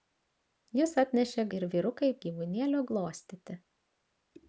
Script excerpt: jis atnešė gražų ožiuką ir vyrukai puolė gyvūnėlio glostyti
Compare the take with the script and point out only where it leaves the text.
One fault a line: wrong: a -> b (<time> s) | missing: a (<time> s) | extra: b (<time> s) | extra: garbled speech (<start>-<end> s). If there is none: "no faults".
missing: gražų ožiuką (1.4 s)
missing: puolė (2.1 s)